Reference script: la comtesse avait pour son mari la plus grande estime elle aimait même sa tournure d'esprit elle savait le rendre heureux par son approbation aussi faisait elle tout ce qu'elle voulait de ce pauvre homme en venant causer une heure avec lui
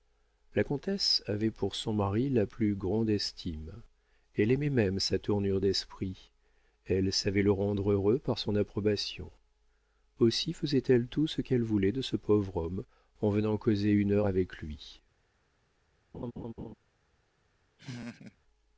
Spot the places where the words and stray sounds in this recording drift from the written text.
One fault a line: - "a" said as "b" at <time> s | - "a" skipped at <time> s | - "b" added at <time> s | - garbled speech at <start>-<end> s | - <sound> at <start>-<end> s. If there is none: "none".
- laugh at 16.1-16.7 s
- laugh at 17.8-18.4 s